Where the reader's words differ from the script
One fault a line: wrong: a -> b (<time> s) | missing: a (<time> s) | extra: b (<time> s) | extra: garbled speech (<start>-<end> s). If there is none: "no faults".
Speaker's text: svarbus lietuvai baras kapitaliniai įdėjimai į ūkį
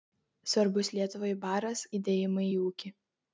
missing: kapitaliniai (1.9 s)